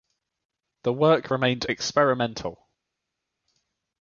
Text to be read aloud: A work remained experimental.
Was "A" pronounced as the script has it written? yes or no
no